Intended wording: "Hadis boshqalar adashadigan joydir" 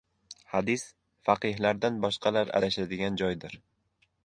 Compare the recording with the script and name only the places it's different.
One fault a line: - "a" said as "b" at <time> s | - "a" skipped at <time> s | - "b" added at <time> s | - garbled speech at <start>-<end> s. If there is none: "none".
- "faqihlardan" added at 1.3 s